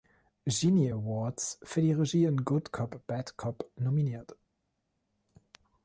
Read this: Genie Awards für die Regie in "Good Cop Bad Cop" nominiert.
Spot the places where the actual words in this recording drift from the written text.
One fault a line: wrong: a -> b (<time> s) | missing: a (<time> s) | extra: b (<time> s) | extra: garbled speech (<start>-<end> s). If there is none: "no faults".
no faults